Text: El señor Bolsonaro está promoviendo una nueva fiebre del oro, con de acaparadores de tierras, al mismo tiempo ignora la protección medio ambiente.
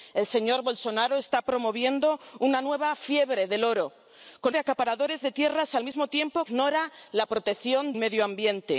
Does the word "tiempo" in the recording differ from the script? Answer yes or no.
no